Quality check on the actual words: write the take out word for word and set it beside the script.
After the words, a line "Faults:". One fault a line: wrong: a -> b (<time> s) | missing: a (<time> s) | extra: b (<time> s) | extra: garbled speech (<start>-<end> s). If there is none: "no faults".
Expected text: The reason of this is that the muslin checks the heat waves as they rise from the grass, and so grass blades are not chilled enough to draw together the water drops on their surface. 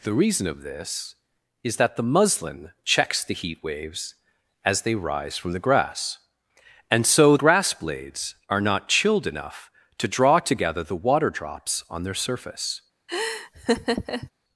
The reason of this is that the muslin checks the heat waves as they rise from the grass, and so grass blades are not chilled enough to draw together the water drops on their surface.
Faults:
no faults